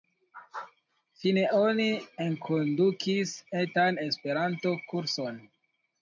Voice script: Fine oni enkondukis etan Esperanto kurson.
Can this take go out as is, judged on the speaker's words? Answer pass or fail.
pass